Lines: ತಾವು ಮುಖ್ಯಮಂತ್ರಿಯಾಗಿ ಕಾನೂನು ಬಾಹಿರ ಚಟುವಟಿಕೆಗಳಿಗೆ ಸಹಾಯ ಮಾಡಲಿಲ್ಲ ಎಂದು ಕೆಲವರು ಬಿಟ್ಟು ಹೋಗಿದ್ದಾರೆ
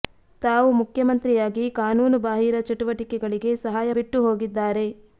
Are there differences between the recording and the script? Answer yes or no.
yes